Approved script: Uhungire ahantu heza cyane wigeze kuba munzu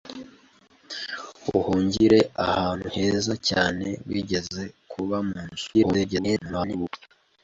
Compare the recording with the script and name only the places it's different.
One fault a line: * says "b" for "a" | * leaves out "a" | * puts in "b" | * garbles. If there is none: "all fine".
* garbles